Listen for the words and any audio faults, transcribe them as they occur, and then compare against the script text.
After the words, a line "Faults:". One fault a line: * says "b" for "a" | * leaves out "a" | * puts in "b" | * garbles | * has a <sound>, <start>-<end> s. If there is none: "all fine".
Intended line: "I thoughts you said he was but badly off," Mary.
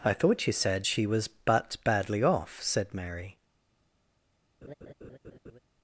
"I thought you said she was but badly off," said Mary.
Faults:
* says "thought" for "thoughts"
* says "she" for "he"
* puts in "said"
* has a laugh, 4.6-5.6 s